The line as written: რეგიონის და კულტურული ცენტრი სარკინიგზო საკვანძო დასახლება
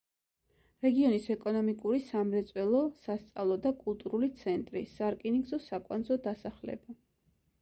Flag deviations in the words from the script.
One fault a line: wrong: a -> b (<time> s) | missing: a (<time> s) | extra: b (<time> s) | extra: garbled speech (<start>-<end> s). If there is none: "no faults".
extra: ეკონომიკური სამრეწველო სასწავლო (1.3 s)